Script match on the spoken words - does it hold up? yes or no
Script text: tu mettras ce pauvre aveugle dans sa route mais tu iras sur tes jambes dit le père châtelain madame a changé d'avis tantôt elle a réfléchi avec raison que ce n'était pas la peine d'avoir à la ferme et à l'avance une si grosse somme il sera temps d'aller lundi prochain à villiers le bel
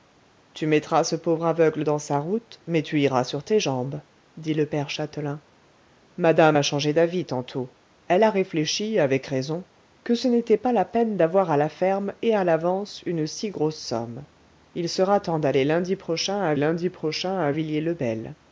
no